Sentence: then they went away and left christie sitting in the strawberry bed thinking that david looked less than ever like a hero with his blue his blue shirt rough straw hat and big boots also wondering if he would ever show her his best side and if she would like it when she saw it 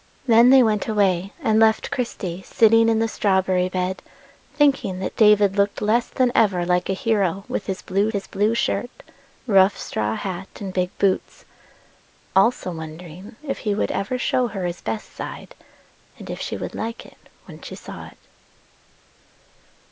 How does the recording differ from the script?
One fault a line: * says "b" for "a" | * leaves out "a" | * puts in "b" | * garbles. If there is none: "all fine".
all fine